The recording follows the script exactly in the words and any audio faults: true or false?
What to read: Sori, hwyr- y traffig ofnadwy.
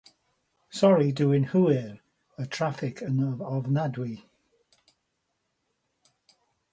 false